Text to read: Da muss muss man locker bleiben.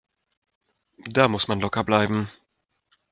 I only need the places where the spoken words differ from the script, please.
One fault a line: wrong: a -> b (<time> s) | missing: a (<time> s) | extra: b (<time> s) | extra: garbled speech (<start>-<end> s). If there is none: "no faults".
missing: muss (1.5 s)